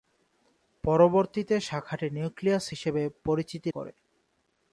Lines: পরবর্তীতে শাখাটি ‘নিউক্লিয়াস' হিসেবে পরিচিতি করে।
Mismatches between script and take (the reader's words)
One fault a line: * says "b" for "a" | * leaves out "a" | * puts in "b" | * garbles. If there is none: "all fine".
all fine